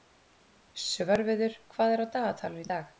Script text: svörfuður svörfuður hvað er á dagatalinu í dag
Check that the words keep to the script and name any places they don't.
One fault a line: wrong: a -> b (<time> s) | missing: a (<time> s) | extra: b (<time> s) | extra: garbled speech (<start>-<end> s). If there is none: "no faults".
missing: svörfuður (1.6 s)